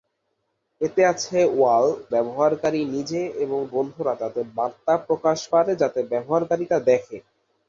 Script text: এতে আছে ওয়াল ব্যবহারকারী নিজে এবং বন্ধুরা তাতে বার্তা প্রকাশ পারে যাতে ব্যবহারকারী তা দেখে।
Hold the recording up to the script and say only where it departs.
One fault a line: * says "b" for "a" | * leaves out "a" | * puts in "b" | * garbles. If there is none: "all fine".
all fine